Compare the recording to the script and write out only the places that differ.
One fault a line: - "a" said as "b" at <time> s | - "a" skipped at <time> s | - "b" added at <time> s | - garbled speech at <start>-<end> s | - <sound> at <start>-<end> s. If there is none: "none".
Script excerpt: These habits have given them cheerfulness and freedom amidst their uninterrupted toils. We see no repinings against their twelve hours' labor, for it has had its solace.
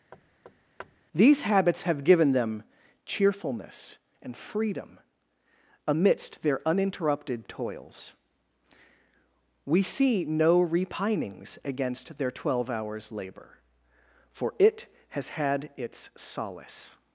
- thud at 0.1-1.0 s